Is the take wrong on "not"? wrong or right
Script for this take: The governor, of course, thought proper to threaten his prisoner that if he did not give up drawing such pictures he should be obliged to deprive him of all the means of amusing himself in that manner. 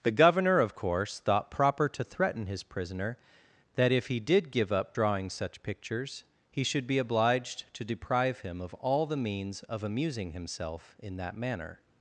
wrong